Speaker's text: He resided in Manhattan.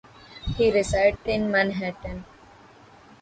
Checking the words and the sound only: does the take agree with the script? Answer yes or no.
no